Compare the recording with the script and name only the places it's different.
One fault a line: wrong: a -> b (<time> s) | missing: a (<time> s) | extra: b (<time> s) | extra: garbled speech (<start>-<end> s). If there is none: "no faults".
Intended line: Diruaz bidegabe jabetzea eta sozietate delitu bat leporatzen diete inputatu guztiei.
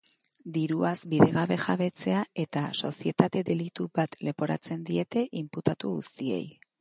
no faults